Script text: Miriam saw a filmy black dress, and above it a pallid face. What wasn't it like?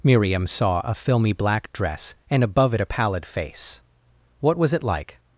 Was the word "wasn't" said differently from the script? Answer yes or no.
yes